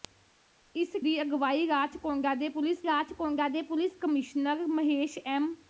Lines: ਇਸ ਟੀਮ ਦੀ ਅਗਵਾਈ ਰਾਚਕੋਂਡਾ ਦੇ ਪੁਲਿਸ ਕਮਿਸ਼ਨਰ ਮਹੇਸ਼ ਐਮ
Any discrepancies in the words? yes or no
yes